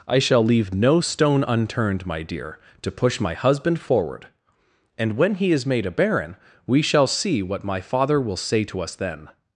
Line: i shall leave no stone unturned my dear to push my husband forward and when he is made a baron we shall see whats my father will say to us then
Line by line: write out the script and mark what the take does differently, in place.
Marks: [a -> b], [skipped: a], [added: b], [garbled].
i shall leave no stone unturned my dear to push my husband forward and when he is made a baron we shall see [whats -> what] my father will say to us then